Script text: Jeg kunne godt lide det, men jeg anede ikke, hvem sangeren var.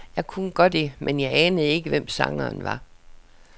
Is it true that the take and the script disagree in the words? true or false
true